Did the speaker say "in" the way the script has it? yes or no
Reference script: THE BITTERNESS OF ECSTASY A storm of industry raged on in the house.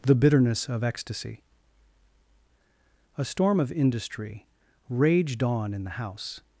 yes